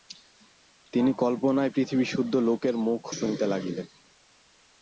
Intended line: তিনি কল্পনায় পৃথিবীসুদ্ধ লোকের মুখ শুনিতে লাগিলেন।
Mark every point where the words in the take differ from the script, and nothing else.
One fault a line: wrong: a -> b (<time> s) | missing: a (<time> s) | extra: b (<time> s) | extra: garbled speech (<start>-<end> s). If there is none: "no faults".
no faults